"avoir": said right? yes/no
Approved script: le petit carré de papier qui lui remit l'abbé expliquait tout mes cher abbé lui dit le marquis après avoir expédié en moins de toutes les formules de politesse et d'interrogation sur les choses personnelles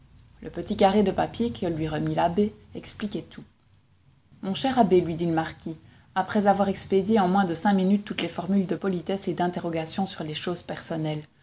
yes